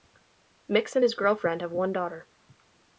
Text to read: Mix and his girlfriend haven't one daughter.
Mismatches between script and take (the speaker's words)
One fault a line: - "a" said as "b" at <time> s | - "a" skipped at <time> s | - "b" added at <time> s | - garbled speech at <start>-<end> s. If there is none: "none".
- "haven't" said as "have" at 1.6 s